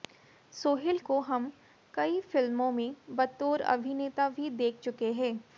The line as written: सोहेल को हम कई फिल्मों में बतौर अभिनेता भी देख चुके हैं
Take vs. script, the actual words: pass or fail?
pass